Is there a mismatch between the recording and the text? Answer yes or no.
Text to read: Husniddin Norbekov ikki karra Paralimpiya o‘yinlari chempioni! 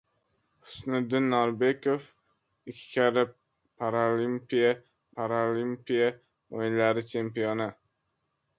yes